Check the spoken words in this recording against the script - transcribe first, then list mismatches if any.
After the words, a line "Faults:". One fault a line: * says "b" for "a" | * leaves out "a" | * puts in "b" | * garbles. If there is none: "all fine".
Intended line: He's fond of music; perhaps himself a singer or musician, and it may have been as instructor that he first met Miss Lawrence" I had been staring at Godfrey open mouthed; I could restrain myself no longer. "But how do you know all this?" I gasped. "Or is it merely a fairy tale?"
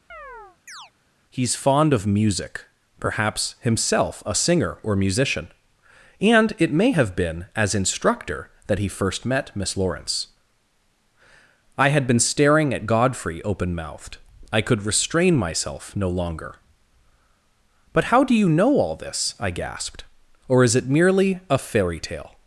He's fond of music; perhaps himself a singer or musician, and it may have been as instructor that he first met Miss Lawrence" I had been staring at Godfrey open mouthed; I could restrain myself no longer. "But how do you know all this?" I gasped. "Or is it merely a fairy tale?"
Faults:
all fine